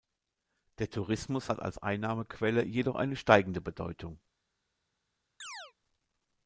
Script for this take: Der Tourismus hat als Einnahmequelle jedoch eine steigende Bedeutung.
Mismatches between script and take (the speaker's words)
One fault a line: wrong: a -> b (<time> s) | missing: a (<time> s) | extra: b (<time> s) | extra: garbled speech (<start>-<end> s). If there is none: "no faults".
no faults